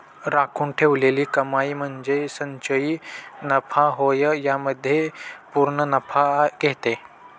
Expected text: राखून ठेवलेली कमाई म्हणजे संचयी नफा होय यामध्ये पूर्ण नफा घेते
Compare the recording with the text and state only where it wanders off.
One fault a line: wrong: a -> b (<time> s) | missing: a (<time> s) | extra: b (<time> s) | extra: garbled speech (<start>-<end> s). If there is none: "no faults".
no faults